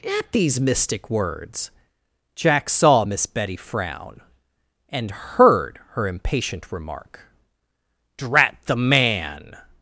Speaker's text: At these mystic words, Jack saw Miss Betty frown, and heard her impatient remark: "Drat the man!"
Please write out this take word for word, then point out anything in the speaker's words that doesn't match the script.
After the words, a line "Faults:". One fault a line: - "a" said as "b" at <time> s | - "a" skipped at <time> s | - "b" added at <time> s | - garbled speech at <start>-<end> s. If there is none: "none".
At these mystic words, Jack saw Miss Betty frown, and heard her impatient remark: "Drat the man!"
Faults:
none